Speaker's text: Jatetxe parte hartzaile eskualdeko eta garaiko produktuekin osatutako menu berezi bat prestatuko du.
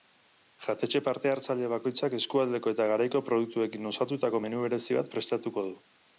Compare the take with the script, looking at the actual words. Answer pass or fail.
fail